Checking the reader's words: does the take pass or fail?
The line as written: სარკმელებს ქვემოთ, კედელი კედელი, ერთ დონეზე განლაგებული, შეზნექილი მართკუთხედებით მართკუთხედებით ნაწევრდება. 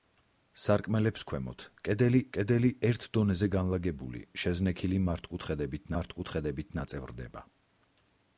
pass